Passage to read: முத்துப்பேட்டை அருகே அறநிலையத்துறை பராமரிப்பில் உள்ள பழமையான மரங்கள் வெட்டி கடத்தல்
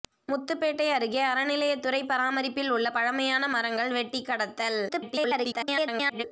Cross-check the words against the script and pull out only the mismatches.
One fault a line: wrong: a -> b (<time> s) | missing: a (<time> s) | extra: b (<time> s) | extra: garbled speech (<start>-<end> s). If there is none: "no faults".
extra: garbled speech (4.9-6.2 s)